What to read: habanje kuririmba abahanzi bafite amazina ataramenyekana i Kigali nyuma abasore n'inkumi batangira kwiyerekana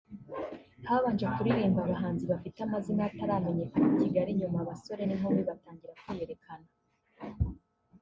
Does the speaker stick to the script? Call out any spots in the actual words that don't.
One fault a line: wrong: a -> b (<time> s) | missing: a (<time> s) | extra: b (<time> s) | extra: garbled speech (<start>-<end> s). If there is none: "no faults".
no faults